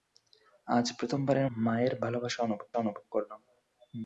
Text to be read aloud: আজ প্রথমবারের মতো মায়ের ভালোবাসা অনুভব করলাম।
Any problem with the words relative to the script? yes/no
yes